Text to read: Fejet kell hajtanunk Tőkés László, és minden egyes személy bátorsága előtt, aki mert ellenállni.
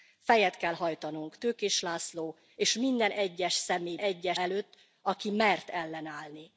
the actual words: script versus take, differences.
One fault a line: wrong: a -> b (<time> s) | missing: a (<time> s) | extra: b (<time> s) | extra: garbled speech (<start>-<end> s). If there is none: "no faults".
wrong: bátorsága -> egyes (4.0 s)